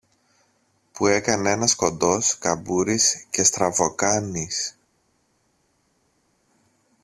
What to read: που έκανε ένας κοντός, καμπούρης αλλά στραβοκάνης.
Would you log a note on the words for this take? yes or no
yes